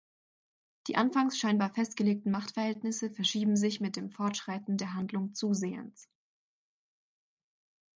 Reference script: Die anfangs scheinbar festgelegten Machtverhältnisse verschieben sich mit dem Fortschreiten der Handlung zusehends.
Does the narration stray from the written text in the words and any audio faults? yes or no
no